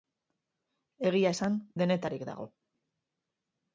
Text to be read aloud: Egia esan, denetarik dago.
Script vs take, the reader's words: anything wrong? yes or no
no